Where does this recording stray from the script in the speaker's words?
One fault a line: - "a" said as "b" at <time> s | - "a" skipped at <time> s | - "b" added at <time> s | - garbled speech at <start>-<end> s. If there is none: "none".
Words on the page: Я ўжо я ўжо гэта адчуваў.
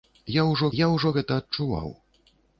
none